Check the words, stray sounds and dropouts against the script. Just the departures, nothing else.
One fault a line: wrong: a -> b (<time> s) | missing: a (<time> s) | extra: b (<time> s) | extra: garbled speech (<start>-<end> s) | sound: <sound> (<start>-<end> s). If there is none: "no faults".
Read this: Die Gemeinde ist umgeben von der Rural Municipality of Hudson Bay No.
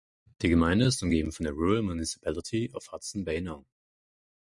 no faults